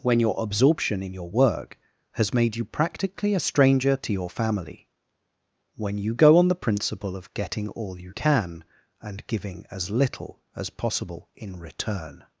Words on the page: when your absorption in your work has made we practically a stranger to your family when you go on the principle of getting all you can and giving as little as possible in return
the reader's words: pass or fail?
fail